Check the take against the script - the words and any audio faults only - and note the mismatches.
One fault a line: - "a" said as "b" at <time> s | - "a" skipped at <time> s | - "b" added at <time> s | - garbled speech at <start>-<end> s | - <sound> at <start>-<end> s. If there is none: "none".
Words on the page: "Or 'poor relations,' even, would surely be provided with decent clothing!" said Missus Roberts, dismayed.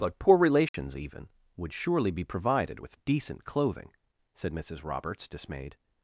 - "Or" said as "But" at 0.0 s
- dropout at 0.7-0.7 s